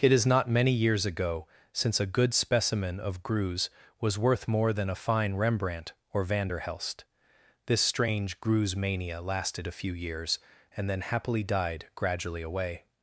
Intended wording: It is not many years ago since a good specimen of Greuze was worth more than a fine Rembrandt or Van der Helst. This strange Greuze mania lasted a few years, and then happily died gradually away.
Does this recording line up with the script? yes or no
yes